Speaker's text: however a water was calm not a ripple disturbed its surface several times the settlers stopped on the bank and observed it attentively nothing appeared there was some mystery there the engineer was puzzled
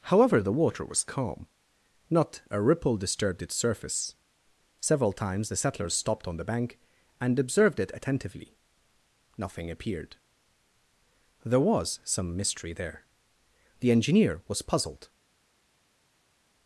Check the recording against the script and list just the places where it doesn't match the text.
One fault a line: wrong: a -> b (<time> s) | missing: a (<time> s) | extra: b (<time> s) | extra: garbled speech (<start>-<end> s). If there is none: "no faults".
wrong: a -> the (0.4 s)